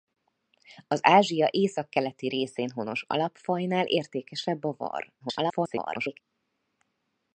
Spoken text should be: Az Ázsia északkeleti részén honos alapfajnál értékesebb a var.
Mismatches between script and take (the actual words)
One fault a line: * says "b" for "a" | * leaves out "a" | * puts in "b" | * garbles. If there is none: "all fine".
* garbles